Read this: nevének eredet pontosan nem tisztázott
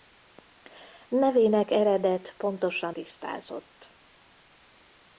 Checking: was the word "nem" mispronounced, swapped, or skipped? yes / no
yes